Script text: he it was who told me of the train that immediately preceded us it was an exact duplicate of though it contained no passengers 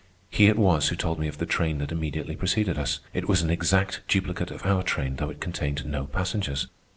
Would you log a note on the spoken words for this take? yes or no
yes